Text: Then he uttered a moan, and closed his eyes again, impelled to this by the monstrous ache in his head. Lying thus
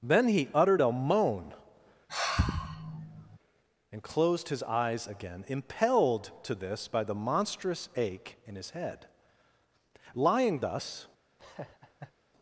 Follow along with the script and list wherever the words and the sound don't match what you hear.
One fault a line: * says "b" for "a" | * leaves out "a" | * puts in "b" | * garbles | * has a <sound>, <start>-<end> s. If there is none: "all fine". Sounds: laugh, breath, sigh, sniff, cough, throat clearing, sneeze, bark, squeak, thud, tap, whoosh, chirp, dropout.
* has a sigh, 2.1-3.4 s
* has a laugh, 11.4-12.1 s